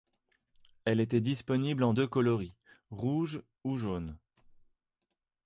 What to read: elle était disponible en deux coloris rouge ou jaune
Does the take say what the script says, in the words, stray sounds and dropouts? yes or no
yes